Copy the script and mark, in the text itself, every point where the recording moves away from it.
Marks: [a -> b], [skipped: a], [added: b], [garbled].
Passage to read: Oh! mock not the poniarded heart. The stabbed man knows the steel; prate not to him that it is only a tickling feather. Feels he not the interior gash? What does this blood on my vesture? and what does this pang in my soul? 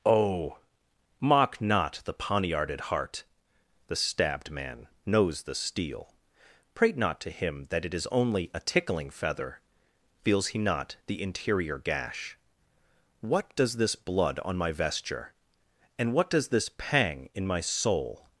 Oh! mock not the poniarded heart. The stabbed man knows the steel; prate not to him that it is only a tickling feather. Feels he not the interior gash? What does this blood on my vesture? and what does this pang in my soul?